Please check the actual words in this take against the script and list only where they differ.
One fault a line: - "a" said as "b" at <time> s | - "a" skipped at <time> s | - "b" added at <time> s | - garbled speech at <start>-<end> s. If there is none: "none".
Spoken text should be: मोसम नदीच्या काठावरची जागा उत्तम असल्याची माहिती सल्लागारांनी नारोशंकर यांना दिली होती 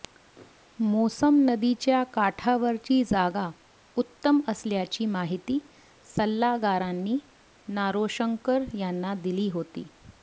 none